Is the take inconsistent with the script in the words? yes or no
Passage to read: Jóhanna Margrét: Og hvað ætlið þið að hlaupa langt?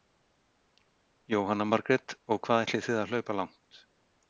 no